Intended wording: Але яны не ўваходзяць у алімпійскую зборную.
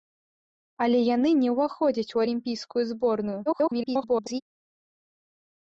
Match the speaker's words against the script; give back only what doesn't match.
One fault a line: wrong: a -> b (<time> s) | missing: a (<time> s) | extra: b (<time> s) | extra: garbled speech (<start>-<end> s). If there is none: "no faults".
extra: garbled speech (3.5-4.4 s)